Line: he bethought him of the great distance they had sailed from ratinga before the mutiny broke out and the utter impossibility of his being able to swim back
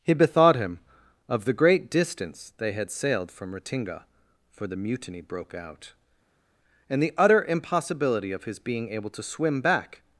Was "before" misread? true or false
true